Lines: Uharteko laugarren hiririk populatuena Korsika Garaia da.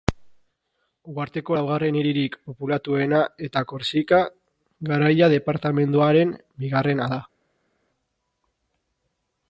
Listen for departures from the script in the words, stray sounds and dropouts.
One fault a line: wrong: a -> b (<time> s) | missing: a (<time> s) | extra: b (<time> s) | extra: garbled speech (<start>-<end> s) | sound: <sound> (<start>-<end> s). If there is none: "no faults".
extra: eta (3.5 s)
extra: departamenduaren bigarrena (5.3 s)